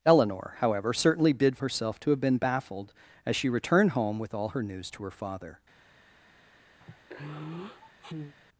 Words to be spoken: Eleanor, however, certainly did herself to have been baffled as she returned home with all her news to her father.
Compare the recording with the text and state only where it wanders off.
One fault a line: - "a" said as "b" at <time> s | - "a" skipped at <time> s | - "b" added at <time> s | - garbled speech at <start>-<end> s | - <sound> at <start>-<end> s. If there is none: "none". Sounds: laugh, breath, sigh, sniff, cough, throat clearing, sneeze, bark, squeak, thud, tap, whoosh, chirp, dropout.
- sigh at 6.8-8.3 s